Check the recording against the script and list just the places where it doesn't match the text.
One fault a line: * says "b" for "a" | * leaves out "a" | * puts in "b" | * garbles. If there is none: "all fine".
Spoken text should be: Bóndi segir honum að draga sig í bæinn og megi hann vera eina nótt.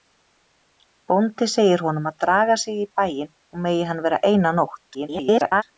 * garbles